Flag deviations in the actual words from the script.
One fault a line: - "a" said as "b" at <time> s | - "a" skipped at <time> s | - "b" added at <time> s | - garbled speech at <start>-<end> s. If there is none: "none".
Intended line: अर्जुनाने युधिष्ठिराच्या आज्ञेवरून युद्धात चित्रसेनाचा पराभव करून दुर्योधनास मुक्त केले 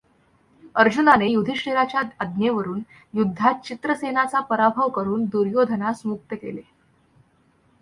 none